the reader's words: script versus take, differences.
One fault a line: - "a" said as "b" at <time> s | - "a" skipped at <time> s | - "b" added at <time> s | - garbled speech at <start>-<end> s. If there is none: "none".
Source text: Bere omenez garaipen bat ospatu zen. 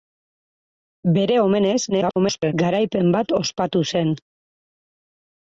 - garbled speech at 1.9-2.5 s